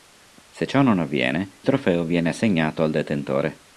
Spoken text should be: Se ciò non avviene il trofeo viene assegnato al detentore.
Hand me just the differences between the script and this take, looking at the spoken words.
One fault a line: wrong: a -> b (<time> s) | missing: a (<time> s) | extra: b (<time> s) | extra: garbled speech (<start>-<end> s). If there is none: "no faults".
missing: il (1.6 s)